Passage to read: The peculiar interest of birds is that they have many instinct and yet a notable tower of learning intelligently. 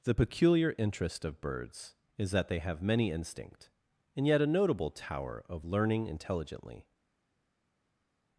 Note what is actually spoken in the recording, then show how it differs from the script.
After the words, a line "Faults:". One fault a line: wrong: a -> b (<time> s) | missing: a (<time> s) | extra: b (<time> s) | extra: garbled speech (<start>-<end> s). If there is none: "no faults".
The peculiar interest of birds is that they have many instinct and yet a notable tower of learning intelligently.
Faults:
no faults